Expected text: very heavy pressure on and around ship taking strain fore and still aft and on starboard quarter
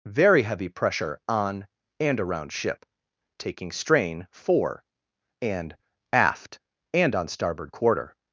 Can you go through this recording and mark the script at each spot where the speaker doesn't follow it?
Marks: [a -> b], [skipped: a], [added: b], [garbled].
very heavy pressure on and around ship taking strain fore and [skipped: still] aft and on starboard quarter